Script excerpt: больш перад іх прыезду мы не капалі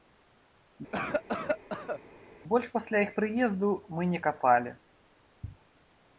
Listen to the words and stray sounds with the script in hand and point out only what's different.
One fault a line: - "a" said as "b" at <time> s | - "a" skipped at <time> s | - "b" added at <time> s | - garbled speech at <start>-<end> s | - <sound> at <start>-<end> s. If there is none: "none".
- cough at 0.9-2.0 s
- "перад" said as "пасля" at 2.8 s